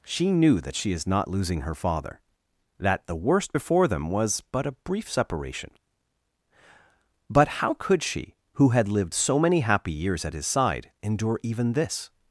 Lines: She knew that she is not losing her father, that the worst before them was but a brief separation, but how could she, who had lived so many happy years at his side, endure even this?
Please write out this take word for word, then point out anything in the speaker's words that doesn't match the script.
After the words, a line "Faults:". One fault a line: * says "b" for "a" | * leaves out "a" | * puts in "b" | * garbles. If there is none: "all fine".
She knew that she is not losing her father, that the worst before them was but a brief separation, but how could she, who had lived so many happy years at his side, endure even this?
Faults:
all fine